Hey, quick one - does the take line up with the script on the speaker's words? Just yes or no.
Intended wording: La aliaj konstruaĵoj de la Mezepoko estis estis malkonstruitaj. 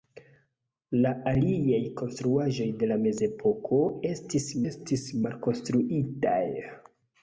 yes